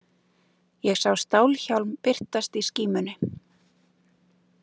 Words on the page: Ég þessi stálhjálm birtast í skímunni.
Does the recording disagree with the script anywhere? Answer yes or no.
yes